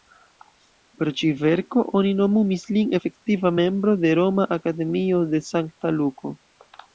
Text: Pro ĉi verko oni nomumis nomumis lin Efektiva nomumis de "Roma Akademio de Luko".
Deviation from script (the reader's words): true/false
true